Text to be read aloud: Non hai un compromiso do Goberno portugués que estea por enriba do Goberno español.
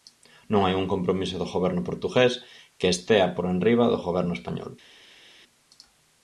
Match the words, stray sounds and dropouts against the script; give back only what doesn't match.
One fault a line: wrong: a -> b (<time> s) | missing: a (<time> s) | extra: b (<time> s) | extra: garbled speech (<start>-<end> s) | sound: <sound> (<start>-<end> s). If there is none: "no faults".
no faults